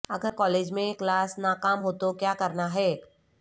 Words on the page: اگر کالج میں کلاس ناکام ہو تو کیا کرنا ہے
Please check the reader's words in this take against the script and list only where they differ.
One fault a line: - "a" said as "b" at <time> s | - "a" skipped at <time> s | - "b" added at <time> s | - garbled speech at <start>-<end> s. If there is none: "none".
none